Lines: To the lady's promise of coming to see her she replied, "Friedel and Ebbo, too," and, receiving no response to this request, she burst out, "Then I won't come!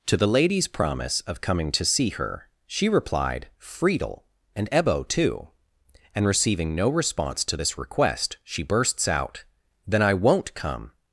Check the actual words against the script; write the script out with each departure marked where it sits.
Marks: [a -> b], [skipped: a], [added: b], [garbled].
To the lady's promise of coming to see her she replied, "Friedel and Ebbo, too," and, receiving no response to this request, she [burst -> bursts] out, "Then I won't come!